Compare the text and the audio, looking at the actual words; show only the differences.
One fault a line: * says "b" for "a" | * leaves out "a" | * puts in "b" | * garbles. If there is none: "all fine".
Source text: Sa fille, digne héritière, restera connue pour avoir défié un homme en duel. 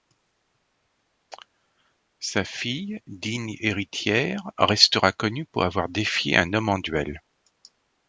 all fine